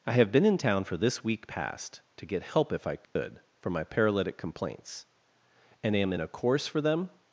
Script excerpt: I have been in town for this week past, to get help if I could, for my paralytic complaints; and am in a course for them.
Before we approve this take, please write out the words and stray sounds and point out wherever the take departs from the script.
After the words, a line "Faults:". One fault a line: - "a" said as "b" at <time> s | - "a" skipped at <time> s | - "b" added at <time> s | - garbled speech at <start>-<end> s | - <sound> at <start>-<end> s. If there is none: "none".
I have been in town for this week past, to get help if I could, for my paralytic complaints; and am in a course for them.
Faults:
- dropout at 3.0-3.2 s